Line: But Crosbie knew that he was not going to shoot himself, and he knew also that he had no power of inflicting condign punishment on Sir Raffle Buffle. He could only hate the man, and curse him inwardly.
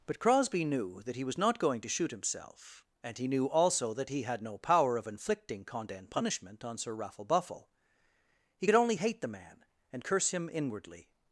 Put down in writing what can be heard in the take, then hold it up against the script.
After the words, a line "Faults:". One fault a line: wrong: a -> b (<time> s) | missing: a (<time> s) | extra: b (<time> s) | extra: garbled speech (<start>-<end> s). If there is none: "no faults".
But Crosbie knew that he was not going to shoot himself, and he knew also that he had no power of inflicting condign punishment on Sir Raffle Buffle. He could only hate the man, and curse him inwardly.
Faults:
no faults